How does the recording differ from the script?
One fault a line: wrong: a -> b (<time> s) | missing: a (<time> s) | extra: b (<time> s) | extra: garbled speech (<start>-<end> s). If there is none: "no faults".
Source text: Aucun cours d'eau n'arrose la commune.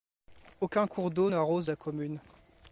no faults